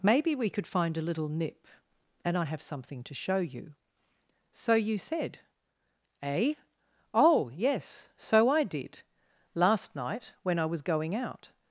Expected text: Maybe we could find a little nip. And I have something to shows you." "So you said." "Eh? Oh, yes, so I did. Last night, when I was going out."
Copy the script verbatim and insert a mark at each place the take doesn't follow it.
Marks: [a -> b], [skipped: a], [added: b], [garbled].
Maybe we could find a little nip. And I have something to [shows -> show] you." "So you said." "Eh? Oh, yes, so I did. Last night, when I was going out."